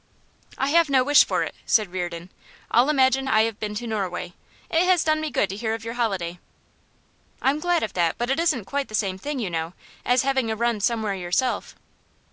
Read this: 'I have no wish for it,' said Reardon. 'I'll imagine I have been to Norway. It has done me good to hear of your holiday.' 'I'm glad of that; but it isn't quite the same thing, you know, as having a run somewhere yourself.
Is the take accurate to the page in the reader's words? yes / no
yes